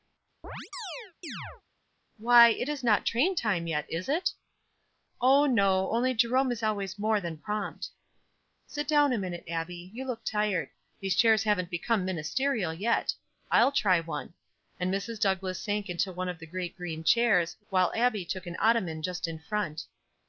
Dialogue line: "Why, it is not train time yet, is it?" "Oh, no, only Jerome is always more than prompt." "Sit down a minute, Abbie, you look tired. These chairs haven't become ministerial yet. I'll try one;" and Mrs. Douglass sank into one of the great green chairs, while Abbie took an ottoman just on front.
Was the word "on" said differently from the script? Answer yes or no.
yes